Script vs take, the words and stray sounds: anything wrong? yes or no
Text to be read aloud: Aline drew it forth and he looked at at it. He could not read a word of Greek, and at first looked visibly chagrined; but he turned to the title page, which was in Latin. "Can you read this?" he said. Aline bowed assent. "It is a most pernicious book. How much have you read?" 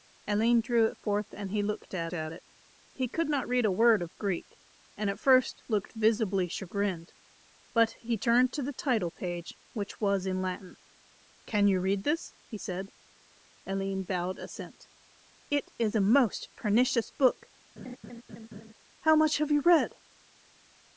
yes